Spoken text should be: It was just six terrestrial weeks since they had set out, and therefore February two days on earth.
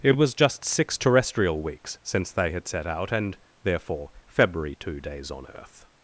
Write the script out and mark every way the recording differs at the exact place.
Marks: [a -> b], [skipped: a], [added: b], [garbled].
It was just six terrestrial weeks since they had set out, and therefore February two days on earth.